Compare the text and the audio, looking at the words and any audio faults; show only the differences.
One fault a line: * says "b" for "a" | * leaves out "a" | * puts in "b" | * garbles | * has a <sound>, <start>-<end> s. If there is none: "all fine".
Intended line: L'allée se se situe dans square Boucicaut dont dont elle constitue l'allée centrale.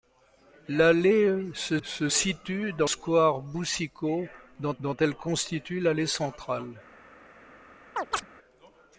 * has a chirp, 8.0-8.3 s